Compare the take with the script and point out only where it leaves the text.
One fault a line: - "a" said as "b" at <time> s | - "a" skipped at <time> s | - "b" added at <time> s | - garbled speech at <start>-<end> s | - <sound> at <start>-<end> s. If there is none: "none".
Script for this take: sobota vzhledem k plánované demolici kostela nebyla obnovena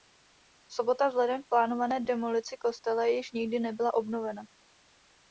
- "již nikdy" added at 3.0 s